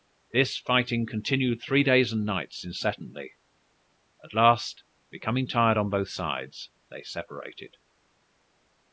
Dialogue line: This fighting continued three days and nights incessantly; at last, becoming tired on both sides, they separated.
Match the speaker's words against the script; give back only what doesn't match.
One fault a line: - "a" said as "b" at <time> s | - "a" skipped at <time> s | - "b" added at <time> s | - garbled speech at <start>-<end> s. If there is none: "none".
none